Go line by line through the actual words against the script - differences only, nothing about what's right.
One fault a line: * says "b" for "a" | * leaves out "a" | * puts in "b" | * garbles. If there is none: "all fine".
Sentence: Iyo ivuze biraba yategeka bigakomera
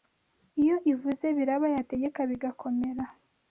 all fine